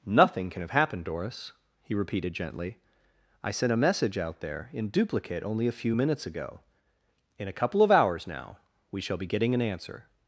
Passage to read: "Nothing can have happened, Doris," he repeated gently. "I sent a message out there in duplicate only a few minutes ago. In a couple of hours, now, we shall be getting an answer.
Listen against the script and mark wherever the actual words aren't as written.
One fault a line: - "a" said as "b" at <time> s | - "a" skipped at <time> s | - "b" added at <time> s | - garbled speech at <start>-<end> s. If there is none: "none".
none